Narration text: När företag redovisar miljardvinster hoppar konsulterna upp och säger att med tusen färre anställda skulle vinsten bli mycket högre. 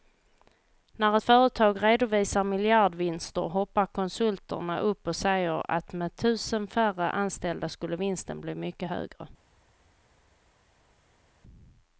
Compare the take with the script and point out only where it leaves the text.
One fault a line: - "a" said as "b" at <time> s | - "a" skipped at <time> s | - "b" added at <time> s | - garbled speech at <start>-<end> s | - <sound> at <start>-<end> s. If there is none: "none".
none